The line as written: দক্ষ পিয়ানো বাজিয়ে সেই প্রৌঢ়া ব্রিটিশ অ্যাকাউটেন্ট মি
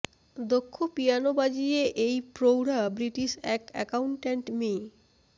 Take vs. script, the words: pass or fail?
fail